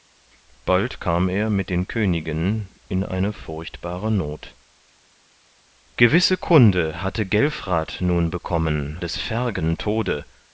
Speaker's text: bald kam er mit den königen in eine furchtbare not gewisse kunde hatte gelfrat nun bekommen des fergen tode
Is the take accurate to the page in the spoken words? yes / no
yes